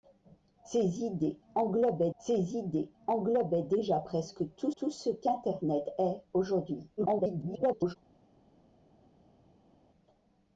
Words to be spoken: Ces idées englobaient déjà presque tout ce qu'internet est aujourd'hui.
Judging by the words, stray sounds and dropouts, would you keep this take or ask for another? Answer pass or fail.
fail